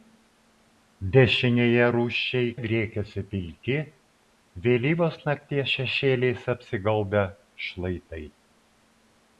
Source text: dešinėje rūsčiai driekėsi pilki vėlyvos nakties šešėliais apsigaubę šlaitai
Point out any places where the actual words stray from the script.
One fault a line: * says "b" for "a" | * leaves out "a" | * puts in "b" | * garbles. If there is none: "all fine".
all fine